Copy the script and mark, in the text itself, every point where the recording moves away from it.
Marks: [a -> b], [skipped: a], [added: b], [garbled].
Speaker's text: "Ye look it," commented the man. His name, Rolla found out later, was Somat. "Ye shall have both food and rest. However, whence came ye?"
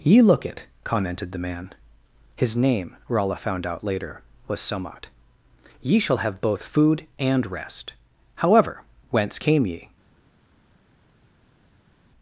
"Ye look it," commented the man. His name, Rolla found out later, was Somat. "Ye shall have both food and rest. However, whence came ye?"